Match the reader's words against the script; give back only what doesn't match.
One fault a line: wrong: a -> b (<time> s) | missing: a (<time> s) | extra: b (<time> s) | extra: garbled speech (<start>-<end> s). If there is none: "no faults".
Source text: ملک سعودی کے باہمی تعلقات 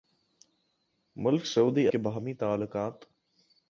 no faults